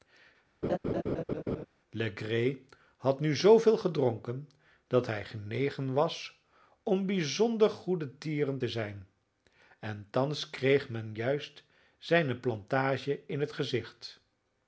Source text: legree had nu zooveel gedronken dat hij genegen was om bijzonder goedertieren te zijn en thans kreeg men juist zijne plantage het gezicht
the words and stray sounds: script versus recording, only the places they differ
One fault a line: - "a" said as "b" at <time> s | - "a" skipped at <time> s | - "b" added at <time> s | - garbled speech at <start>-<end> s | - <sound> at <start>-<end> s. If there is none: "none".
- laugh at 0.6-1.7 s
- "in" added at 13.3 s